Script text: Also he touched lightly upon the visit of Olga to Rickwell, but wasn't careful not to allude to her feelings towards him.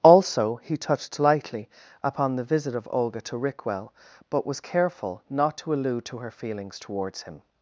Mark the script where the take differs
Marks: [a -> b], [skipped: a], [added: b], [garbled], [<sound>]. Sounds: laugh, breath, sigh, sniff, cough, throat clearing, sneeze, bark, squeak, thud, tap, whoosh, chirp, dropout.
Also he touched lightly upon the visit of Olga to Rickwell, but [wasn't -> was] careful not to allude to her feelings towards him.